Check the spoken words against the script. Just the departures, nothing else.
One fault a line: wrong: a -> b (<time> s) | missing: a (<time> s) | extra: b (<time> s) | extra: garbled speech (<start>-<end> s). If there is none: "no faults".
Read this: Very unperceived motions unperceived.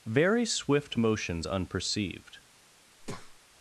wrong: unperceived -> swift (0.5 s)